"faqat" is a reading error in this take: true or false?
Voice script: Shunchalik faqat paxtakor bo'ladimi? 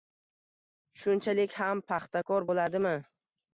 true